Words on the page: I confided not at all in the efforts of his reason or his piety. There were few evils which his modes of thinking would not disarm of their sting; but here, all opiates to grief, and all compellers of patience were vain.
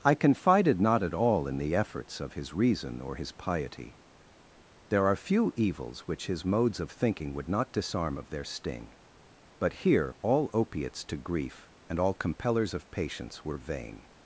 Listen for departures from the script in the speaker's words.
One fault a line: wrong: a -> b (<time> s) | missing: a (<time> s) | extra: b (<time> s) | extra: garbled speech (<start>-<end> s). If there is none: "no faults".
wrong: were -> are (5.0 s)